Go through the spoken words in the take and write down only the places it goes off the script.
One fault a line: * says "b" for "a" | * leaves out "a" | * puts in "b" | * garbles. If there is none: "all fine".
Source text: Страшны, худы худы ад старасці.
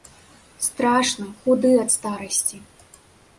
* leaves out "худы"